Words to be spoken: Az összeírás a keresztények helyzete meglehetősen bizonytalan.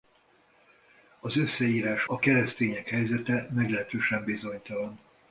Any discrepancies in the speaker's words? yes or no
no